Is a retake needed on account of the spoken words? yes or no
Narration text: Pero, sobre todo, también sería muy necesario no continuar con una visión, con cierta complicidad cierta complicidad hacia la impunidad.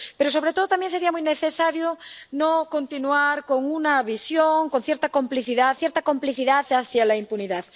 no